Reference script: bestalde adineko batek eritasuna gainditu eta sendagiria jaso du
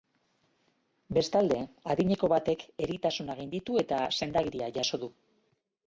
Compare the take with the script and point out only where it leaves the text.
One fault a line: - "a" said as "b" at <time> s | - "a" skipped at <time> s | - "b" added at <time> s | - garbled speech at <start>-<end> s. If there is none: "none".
none